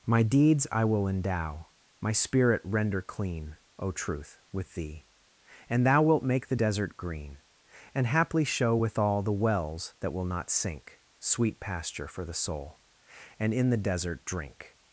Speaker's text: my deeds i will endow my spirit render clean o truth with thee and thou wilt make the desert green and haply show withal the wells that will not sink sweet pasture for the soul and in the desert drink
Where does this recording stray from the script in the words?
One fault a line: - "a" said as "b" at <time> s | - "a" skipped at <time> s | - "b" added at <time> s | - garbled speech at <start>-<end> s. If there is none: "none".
none